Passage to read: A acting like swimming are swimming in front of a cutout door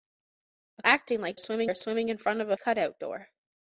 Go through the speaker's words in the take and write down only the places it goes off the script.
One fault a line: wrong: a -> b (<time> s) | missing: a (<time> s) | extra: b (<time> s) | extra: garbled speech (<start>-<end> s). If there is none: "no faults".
no faults